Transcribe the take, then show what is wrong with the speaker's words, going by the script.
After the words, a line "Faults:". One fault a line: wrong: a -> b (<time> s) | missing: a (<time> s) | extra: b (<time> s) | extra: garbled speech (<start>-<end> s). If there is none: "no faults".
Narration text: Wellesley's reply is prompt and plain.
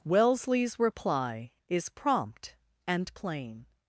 Wellesley's reply is prompt and plain.
Faults:
no faults